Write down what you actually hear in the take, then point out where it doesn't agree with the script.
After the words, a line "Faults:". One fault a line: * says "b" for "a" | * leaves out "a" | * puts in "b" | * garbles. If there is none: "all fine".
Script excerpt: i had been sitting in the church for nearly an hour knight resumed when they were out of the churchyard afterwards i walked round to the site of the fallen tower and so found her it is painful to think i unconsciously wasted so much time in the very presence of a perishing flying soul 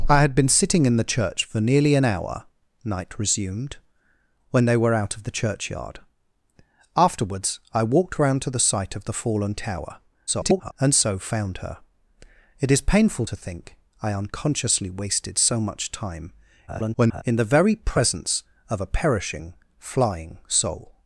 i had been sitting in the church for nearly an hour knight resumed when they were out of the churchyard afterwards i walked round to the site of the fallen tower [garbled] and so found her it is painful to think i unconsciously wasted so much time [garbled] in the very presence of a perishing flying soul
Faults:
* garbles
* garbles